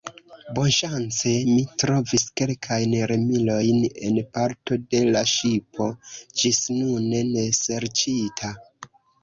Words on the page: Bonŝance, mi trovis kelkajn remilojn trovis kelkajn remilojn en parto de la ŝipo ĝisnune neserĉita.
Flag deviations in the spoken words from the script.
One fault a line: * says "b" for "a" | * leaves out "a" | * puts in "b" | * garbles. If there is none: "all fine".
* leaves out "trovis kelkajn remilojn"